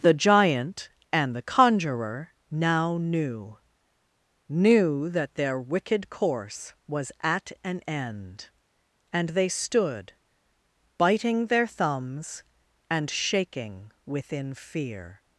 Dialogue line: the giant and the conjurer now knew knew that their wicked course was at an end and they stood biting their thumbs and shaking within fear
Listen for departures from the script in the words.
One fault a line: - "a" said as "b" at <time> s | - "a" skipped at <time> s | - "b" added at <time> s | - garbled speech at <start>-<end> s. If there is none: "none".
none